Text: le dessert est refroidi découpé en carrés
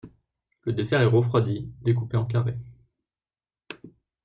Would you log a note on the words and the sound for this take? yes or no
no